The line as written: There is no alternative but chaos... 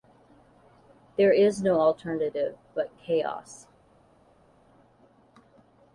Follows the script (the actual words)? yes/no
yes